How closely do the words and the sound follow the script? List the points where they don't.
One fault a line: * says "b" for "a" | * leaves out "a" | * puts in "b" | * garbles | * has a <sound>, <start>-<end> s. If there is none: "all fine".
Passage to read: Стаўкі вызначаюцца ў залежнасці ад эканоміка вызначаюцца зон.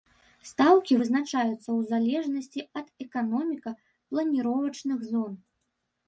* says "планіровачных" for "вызначаюцца"